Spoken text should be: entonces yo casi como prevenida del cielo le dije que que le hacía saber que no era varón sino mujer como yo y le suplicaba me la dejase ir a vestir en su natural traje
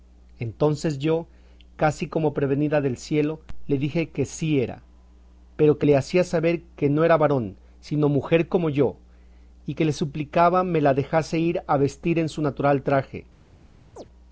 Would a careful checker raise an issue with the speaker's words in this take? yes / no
yes